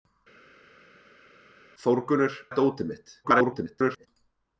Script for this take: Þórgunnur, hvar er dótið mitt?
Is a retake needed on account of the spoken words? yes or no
yes